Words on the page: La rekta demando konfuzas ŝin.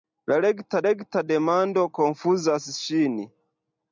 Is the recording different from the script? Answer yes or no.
yes